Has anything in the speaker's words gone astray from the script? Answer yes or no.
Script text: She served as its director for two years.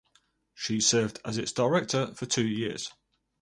no